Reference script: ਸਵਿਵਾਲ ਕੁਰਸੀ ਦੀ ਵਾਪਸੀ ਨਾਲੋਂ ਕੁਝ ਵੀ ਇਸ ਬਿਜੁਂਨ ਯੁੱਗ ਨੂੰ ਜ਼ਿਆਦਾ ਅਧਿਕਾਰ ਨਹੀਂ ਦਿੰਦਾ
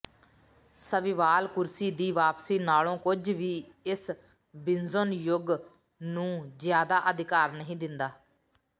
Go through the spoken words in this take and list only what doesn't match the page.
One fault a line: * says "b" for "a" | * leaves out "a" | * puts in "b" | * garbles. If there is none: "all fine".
all fine